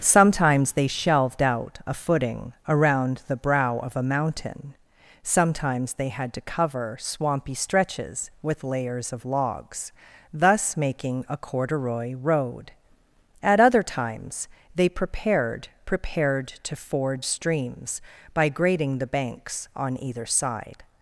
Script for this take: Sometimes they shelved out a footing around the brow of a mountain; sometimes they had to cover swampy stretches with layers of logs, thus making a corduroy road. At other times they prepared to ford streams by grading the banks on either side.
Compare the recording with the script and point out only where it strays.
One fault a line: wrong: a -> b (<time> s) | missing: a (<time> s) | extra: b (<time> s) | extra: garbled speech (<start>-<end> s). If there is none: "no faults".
extra: prepared (15.8 s)